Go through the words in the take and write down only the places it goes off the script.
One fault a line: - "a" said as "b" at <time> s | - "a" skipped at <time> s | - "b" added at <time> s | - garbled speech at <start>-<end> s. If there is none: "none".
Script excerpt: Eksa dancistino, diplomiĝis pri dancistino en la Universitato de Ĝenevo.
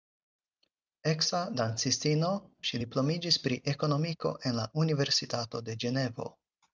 - "ŝi" added at 2.7 s
- "dancistino" said as "ekonomiko" at 3.7 s